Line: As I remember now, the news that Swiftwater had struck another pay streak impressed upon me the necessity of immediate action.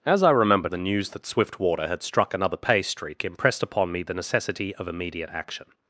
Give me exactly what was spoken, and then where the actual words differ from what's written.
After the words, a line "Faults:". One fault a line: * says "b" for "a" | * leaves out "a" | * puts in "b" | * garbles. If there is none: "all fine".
As I remember the news that Swiftwater had struck another pay streak impressed upon me the necessity of immediate action.
Faults:
* leaves out "now"